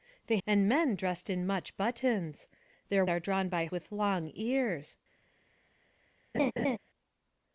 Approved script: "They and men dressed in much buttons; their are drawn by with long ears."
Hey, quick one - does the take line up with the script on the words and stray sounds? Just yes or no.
no